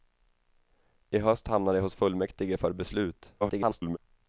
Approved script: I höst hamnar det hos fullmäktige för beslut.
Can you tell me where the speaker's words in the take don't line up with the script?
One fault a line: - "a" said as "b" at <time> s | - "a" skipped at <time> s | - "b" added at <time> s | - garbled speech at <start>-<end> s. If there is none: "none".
- garbled speech at 3.4-4.0 s